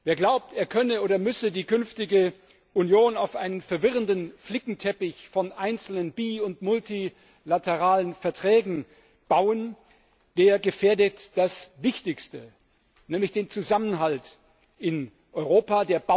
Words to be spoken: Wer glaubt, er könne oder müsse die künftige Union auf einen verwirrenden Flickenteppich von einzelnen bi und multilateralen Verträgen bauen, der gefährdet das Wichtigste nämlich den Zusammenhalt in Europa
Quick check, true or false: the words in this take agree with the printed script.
true